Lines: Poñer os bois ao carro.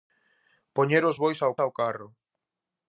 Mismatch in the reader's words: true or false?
true